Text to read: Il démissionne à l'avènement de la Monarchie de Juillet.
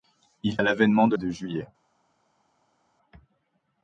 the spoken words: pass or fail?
fail